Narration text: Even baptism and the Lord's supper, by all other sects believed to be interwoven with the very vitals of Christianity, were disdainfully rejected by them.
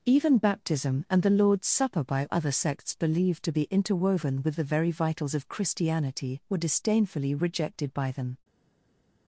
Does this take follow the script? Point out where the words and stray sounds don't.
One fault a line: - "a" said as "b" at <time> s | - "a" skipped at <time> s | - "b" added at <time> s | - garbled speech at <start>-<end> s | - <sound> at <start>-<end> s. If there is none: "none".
- "all" skipped at 2.2 s